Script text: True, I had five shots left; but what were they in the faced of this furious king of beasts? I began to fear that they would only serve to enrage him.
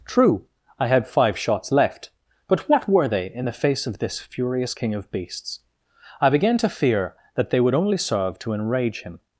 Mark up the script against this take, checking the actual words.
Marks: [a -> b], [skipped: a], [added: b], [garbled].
True, I had five shots left; but what were they in the [faced -> face] of this furious king of beasts? I began to fear that they would only serve to enrage him.